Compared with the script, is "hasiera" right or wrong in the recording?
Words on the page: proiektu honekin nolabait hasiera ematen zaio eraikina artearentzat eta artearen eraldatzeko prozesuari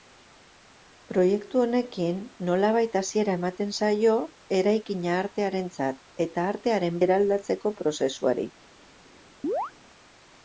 right